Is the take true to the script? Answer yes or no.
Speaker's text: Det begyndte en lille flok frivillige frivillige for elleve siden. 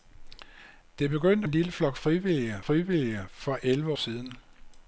yes